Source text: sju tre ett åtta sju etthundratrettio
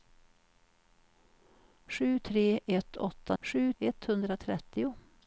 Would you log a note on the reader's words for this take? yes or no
no